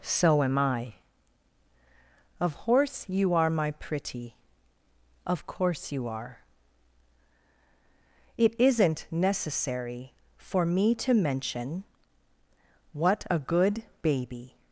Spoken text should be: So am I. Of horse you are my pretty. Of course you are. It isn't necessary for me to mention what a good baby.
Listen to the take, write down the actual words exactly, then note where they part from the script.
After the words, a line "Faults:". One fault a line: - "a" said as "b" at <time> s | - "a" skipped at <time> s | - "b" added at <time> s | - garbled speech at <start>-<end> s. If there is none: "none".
So am I. Of horse you are my pretty. Of course you are. It isn't necessary for me to mention what a good baby.
Faults:
none